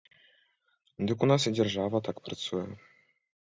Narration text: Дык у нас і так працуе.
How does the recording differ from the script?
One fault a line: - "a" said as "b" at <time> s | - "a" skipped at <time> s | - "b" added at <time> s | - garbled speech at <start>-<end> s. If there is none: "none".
- "дзяржава" added at 1.6 s